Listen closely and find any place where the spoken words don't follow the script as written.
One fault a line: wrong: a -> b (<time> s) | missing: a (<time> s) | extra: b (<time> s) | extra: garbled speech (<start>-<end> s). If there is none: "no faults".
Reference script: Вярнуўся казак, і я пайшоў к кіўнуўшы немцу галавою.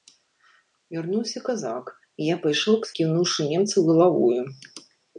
no faults